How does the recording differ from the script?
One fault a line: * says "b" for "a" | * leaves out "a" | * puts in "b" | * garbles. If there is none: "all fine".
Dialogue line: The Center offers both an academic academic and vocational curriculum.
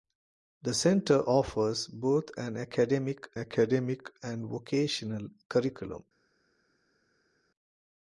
all fine